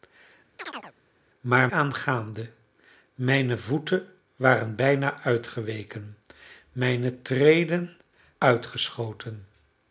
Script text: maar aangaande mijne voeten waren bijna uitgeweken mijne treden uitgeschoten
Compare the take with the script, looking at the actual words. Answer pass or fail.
pass